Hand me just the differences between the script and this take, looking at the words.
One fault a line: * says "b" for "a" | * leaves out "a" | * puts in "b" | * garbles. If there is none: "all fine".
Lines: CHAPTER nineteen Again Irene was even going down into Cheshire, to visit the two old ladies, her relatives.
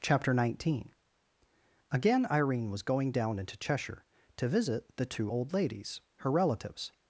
* leaves out "even"